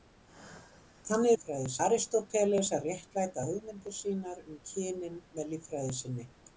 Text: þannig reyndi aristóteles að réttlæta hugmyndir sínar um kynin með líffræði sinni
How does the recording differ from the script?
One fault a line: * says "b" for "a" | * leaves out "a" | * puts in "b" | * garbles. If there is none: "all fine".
* says "líffræði" for "reyndi"